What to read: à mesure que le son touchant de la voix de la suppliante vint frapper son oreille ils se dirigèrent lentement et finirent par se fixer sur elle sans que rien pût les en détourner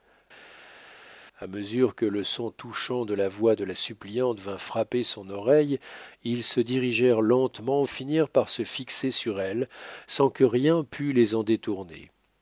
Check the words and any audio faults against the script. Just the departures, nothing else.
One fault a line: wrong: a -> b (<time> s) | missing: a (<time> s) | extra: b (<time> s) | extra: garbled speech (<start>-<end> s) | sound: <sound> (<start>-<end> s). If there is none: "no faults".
no faults